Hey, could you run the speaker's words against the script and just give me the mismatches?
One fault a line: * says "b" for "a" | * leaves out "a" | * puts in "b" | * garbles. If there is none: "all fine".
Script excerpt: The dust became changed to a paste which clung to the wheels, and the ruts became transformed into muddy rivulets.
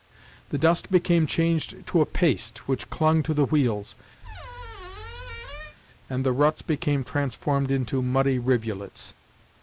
all fine